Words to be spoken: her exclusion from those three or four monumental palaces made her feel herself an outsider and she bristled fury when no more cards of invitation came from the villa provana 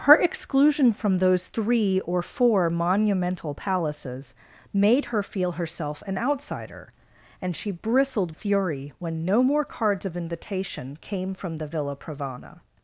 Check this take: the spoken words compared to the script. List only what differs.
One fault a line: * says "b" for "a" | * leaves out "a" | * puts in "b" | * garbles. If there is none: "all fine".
all fine